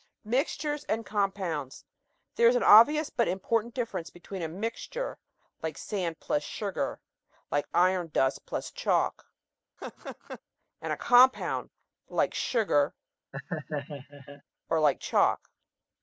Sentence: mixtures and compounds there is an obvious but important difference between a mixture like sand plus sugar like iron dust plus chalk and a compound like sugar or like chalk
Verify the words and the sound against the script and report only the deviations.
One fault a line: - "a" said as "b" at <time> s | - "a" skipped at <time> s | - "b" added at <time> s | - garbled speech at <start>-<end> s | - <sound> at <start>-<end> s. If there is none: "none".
- laugh at 9.8-10.4 s
- laugh at 13.3-14.4 s